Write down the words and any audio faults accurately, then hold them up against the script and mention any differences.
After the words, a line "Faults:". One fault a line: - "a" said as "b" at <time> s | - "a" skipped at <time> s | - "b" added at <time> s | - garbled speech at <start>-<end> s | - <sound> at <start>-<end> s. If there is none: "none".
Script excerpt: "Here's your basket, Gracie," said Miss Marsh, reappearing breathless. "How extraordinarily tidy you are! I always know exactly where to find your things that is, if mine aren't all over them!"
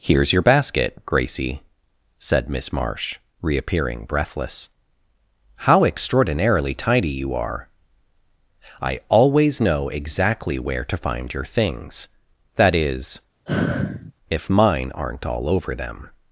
"Here's your basket, Gracie," said Miss Marsh, reappearing breathless. "How extraordinarily tidy you are! I always know exactly where to find your things that is, if mine aren't all over them!"
Faults:
- sigh at 13.5-14.1 s